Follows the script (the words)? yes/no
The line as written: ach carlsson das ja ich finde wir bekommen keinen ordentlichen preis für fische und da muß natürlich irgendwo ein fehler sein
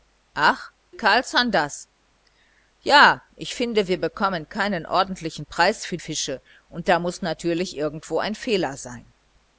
yes